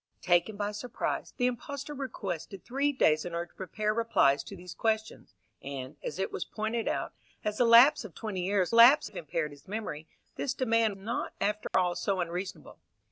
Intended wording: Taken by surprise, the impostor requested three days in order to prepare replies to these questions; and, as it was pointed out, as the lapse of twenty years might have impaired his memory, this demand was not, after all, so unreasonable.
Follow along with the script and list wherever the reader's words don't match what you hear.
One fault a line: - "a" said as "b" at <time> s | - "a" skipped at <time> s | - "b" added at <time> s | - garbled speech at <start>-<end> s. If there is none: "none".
- "might" said as "lapse" at 8.7 s
- "was" skipped at 11.0 s